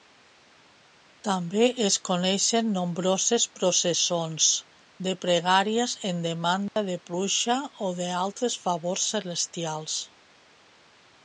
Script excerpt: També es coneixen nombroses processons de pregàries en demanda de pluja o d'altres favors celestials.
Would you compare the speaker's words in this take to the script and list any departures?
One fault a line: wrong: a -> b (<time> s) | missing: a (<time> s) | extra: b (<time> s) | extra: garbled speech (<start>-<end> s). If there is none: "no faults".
no faults